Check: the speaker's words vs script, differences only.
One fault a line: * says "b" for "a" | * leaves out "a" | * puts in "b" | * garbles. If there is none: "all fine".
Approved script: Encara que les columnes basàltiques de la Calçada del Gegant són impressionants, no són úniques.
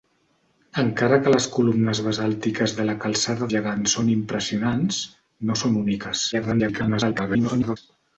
* leaves out "del"
* garbles